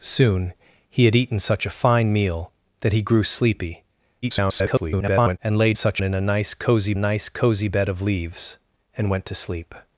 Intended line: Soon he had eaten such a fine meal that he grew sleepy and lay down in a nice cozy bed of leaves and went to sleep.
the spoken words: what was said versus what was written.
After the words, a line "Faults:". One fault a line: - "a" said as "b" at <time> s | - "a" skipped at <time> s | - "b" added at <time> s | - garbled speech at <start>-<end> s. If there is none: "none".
Soon he had eaten such a fine meal that he grew sleepy [garbled] and lay such in a nice cozy nice cozy bed of leaves and went to sleep.
Faults:
- garbled speech at 4.2-5.4 s
- "down" said as "such" at 5.7 s
- "nice cozy" added at 6.9 s